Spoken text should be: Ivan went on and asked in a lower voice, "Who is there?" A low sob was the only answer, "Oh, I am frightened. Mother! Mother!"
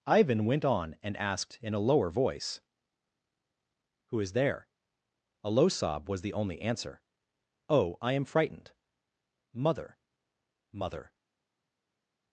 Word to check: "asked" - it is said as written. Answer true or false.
true